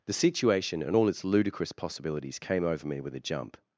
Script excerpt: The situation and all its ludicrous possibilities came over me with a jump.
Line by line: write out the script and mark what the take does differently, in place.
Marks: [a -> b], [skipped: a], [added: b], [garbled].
The situation and all its ludicrous possibilities came over me with a jump.